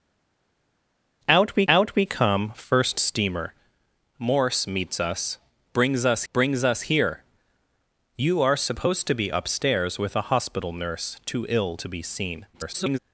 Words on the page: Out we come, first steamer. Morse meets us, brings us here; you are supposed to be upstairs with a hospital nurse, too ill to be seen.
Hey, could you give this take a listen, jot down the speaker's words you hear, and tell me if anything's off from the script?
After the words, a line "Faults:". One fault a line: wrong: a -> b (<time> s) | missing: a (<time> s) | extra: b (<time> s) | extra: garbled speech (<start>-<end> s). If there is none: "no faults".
Out we out we come, first steamer. Morse meets us, brings us brings us here; you are supposed to be upstairs with a hospital nurse, too ill to be seen. [garbled]
Faults:
extra: out we (1.7 s)
extra: brings us (6.3 s)
extra: garbled speech (12.5-13.0 s)